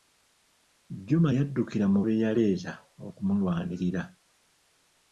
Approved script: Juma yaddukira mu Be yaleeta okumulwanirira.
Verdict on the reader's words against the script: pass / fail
pass